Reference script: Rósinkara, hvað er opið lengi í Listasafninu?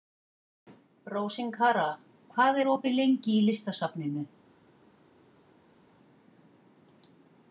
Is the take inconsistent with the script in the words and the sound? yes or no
no